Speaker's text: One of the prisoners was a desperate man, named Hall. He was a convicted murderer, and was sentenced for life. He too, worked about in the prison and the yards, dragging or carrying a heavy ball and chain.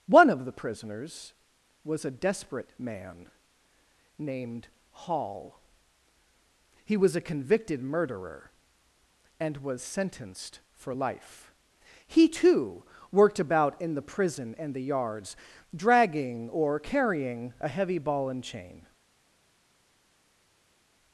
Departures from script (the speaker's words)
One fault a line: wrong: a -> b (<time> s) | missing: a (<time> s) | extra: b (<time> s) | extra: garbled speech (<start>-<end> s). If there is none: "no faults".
no faults